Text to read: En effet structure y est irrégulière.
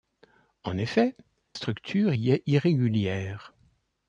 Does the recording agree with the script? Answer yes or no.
yes